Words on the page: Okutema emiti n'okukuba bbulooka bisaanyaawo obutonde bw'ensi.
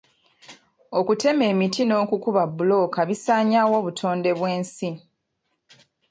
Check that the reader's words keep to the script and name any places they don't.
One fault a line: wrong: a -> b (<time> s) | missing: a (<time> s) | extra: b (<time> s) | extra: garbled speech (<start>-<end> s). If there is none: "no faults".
no faults